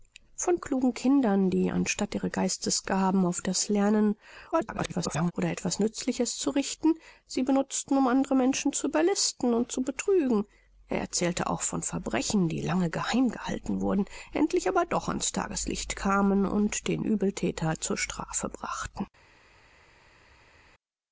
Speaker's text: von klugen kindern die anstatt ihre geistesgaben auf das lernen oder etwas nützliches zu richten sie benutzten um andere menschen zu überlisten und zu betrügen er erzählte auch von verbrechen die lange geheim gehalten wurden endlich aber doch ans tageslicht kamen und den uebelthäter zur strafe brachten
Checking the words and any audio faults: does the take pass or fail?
fail